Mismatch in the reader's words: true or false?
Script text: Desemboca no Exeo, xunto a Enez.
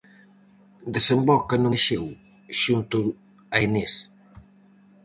false